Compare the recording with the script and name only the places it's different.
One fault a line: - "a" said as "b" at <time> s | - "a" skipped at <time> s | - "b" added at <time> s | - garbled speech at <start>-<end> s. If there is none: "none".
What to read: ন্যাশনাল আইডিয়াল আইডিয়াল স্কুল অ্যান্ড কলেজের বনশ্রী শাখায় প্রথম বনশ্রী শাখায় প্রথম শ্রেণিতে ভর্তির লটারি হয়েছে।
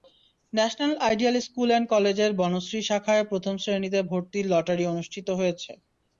- "আইডিয়াল" skipped at 1.4 s
- "বনশ্রী শাখায় প্রথম" skipped at 3.5 s
- "অনুষ্ঠিত" added at 4.9 s